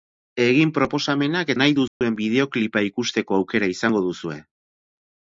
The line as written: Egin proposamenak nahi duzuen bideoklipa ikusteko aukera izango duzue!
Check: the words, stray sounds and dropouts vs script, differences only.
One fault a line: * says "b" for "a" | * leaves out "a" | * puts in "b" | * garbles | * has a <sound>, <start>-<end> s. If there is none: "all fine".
* has a dropout, 1.9-2.0 s